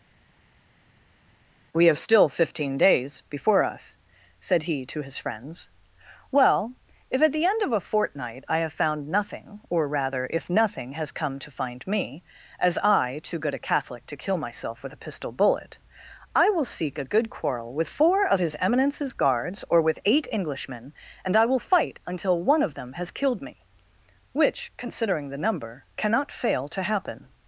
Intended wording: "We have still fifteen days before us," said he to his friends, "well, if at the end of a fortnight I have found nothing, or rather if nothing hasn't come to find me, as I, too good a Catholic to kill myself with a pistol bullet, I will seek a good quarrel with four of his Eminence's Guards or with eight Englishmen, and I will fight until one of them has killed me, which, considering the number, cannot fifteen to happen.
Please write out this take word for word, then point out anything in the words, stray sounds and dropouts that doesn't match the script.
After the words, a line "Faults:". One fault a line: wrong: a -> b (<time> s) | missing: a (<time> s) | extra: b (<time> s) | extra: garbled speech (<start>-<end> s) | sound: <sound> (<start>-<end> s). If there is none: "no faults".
"We have still fifteen days before us," said he to his friends, "well, if at the end of a fortnight I have found nothing, or rather if nothing has come to find me, as I, too good a Catholic to kill myself with a pistol bullet, I will seek a good quarrel with four of his Eminence's Guards or with eight Englishmen, and I will fight until one of them has killed me, which, considering the number, cannot fail to happen.
Faults:
wrong: hasn't -> has (10.9 s)
wrong: fifteen -> fail (26.3 s)